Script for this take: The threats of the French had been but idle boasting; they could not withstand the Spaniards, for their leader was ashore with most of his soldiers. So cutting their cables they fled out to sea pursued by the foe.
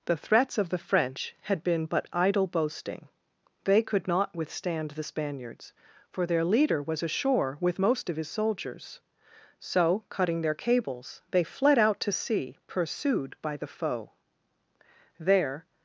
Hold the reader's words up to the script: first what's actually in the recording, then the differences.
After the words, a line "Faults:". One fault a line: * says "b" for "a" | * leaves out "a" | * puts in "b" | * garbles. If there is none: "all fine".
The threats of the French had been but idle boasting; they could not withstand the Spaniards, for their leader was ashore with most of his soldiers. So cutting their cables they fled out to sea pursued by the foe. There
Faults:
* puts in "There"